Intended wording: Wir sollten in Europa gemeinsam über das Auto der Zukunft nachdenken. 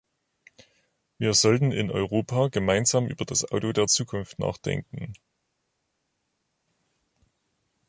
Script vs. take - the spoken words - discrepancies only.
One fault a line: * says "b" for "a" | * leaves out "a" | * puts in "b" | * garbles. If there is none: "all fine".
all fine